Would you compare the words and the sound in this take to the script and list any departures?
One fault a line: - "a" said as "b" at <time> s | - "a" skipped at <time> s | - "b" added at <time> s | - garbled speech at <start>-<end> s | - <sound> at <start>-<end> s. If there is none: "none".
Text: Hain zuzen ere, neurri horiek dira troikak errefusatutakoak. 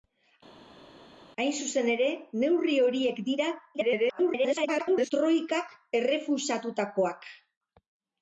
- garbled speech at 3.7-5.1 s